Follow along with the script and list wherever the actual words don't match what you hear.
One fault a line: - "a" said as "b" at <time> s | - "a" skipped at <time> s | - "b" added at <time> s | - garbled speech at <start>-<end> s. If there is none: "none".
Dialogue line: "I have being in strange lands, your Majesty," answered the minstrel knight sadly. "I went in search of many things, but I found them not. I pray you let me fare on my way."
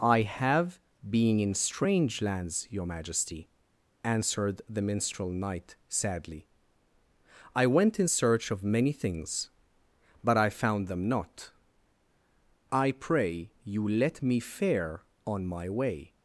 none